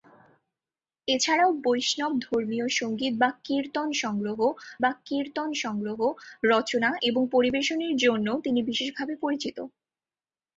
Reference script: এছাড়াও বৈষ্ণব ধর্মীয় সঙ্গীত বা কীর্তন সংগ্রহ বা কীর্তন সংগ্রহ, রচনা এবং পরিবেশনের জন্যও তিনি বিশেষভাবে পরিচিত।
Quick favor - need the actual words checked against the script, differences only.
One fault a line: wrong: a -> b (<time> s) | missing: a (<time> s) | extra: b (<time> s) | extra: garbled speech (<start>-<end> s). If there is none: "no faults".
no faults